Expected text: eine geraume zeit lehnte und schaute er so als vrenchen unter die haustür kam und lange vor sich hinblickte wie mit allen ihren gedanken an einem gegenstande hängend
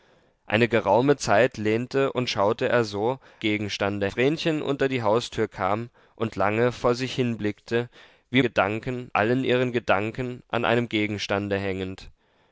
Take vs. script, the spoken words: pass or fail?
fail